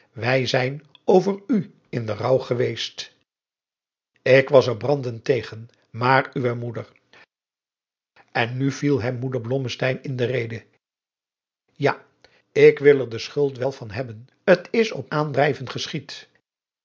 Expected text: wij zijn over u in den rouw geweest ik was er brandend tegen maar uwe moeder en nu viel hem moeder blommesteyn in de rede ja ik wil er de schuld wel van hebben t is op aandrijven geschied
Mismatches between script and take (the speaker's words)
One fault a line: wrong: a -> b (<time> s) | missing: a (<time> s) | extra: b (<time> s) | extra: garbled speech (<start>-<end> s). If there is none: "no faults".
no faults